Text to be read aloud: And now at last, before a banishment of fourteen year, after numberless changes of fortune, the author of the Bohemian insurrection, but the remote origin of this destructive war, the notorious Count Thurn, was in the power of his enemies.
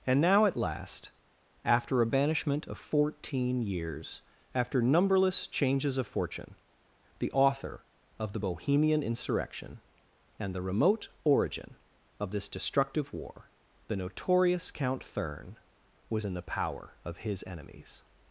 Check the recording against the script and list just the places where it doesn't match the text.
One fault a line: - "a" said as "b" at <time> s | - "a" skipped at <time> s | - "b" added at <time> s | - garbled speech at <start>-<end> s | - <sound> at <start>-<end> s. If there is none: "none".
- "before" said as "after" at 1.6 s
- "year" said as "years" at 3.6 s
- "but" said as "and" at 10.4 s